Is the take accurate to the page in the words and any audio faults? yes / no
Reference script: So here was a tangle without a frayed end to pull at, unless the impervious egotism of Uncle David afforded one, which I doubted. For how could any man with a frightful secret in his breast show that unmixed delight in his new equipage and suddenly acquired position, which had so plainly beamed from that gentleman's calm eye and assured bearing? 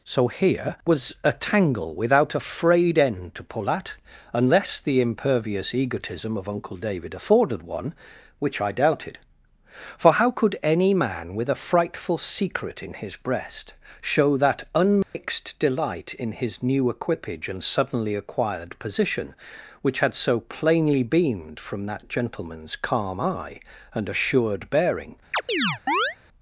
no